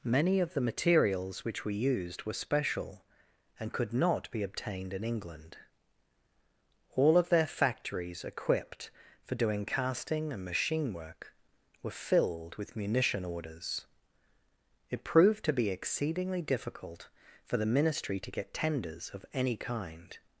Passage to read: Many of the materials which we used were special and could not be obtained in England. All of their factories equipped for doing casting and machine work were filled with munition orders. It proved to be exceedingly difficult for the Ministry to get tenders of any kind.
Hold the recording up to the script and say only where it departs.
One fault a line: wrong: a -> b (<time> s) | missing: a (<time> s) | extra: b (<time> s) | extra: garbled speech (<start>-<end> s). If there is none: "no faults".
no faults